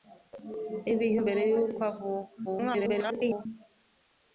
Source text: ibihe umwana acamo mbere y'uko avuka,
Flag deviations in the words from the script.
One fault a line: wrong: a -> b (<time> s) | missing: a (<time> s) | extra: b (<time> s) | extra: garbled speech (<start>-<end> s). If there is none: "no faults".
missing: umwana acamo (1.2 s)
extra: garbled speech (2.5-3.5 s)